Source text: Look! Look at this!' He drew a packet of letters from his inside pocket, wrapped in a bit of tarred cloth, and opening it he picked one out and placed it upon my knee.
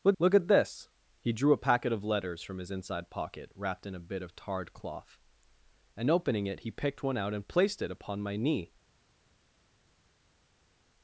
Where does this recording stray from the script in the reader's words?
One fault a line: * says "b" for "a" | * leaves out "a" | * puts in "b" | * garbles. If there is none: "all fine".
all fine